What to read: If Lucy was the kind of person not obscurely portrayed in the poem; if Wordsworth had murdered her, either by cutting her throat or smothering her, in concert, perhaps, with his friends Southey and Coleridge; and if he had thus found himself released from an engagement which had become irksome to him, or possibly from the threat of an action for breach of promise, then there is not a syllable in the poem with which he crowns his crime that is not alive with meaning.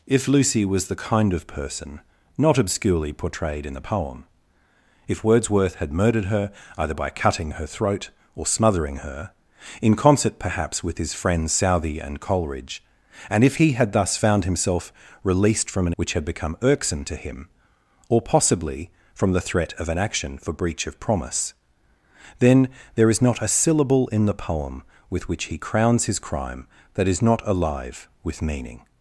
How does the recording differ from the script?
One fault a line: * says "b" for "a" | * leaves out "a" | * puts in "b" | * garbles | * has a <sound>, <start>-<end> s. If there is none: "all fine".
* leaves out "engagement"